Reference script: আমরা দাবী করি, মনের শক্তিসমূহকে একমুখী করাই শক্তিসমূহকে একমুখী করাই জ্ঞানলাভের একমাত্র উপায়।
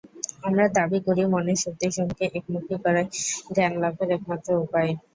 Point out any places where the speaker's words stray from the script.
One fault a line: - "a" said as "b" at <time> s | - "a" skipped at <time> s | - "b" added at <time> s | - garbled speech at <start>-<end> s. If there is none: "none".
- "শক্তিসমূহকে একমুখী করাই" skipped at 3.0 s